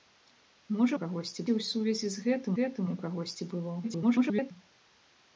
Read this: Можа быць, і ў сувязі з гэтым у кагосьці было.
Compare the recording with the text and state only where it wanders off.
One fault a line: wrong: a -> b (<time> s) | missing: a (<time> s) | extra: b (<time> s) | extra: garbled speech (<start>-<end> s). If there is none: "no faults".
wrong: быць -> кагосьці (1.0 s)
extra: гэтым (2.6 s)
extra: garbled speech (3.8-4.5 s)